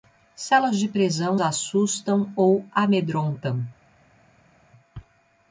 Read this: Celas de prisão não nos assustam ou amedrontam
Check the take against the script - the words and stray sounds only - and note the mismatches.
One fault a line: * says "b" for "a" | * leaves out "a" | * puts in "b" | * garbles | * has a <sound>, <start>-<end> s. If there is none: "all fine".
* leaves out "não nos"